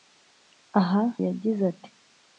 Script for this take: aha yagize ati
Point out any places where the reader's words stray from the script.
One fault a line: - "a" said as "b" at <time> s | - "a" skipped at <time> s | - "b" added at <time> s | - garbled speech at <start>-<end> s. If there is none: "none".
none